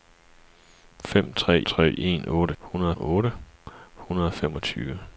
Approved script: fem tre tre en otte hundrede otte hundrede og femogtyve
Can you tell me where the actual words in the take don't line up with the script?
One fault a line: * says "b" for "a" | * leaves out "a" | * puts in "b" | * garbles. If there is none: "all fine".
all fine